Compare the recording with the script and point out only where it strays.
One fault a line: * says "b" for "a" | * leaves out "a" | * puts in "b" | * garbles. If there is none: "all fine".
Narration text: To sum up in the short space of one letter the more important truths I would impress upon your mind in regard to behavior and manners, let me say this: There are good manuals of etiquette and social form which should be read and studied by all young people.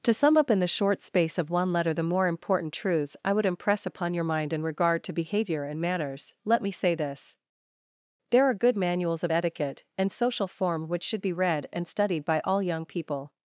all fine